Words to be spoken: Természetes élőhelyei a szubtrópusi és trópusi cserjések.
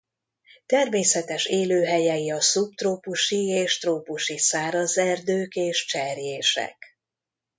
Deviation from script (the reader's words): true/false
true